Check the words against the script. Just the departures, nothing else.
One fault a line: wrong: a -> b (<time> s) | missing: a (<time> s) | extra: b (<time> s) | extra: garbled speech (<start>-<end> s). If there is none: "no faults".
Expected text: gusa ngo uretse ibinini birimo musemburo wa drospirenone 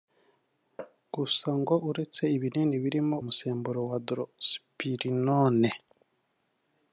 no faults